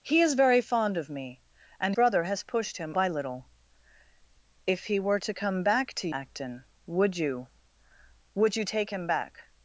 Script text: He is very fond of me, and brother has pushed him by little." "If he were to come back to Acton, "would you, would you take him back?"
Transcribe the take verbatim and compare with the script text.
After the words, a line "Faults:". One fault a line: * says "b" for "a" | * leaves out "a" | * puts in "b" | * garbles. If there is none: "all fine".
He is very fond of me, and brother has pushed him by little." "If he were to come back to Acton, "would you, would you take him back?"
Faults:
all fine